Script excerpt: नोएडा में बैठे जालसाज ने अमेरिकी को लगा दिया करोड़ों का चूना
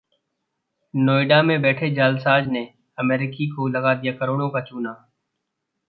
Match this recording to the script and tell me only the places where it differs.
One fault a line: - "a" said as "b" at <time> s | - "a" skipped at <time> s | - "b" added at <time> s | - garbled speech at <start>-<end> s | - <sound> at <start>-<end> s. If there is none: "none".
none